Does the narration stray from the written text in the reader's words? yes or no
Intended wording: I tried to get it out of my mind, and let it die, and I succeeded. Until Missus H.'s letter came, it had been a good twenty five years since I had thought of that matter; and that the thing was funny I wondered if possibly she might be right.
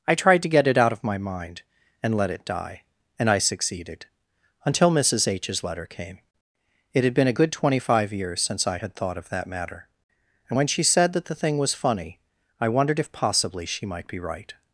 yes